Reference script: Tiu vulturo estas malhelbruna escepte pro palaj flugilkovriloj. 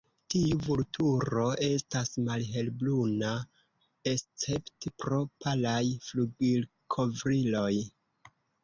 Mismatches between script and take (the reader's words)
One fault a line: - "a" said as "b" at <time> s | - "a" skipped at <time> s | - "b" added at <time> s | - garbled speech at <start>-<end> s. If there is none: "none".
none